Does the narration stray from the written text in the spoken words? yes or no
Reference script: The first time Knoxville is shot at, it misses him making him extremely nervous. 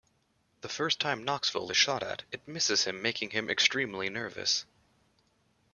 no